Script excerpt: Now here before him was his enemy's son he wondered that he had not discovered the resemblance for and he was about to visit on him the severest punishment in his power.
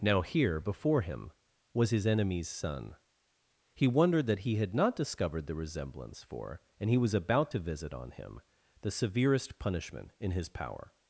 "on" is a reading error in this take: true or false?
false